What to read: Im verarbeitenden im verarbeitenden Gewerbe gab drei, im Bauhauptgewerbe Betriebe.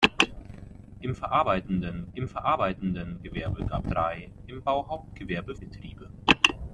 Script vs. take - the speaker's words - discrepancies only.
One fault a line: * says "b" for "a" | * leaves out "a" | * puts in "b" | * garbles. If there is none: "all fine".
all fine